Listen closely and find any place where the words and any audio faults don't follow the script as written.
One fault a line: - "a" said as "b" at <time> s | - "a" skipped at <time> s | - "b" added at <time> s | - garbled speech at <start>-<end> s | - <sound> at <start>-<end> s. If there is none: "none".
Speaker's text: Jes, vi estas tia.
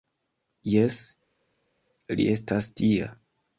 - "vi" said as "li" at 2.2 s